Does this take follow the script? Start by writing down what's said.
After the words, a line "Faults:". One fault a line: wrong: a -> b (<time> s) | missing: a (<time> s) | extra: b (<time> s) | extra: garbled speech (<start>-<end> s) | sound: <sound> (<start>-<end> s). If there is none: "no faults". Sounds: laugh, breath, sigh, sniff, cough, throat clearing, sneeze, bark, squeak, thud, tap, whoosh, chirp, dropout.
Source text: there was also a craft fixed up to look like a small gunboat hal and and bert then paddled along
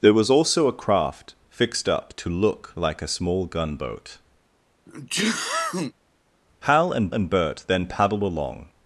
there was also a craft fixed up to look like a small gunboat hal and and bert then paddled along
Faults:
sound: sneeze (4.9-5.9 s)